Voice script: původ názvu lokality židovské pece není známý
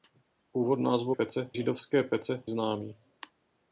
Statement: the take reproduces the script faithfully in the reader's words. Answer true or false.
false